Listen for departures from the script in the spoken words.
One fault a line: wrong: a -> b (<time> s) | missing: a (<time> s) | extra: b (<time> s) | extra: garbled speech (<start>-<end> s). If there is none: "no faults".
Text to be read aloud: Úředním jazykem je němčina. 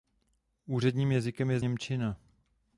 no faults